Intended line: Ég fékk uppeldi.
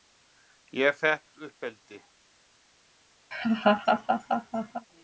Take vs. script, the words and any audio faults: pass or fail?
fail